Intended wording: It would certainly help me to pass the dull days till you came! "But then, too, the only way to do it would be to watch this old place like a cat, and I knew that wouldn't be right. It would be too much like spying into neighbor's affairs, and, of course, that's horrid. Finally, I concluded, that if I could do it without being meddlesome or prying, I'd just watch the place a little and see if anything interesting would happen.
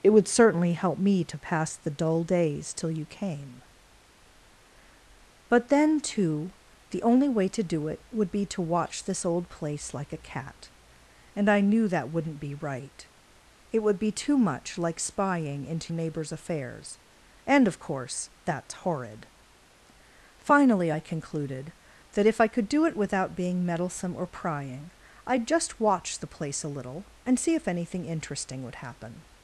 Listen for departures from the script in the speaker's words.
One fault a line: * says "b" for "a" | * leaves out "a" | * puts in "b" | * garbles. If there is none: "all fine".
all fine